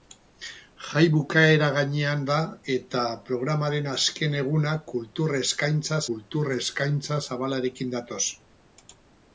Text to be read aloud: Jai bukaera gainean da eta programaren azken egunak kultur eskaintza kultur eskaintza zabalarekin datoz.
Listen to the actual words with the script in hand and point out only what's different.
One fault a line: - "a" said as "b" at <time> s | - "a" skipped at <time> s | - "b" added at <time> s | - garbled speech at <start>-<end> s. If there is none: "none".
none